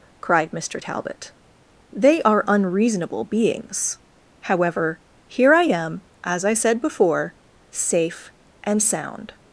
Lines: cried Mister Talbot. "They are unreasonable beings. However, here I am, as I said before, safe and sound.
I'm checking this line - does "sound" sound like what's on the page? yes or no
yes